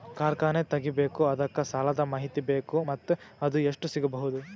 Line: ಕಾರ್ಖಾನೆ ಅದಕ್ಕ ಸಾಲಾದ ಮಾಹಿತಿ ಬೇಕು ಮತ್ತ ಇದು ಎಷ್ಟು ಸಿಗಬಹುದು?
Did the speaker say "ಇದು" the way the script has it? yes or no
no